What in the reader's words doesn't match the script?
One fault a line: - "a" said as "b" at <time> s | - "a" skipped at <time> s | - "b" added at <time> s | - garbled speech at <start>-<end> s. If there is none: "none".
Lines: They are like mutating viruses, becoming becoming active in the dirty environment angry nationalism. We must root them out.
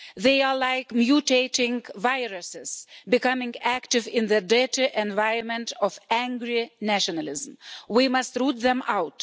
- "becoming" skipped at 3.5 s
- "of" added at 5.8 s